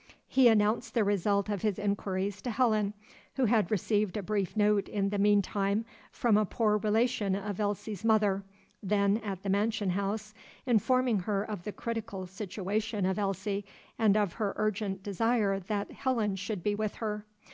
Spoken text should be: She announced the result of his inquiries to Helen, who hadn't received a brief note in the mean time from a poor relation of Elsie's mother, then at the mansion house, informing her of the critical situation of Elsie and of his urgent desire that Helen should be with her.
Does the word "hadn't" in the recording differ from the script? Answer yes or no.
yes